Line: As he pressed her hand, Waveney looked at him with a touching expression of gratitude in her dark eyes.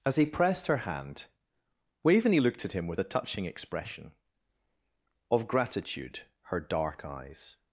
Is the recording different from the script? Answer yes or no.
yes